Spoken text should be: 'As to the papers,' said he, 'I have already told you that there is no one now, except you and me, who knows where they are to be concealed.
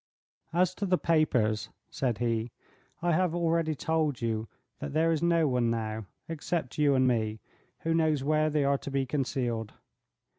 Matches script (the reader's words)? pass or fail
pass